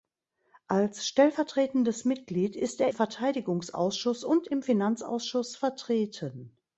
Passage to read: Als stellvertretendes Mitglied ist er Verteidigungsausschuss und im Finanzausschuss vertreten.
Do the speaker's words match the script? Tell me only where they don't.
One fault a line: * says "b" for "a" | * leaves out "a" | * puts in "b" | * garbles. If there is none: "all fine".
all fine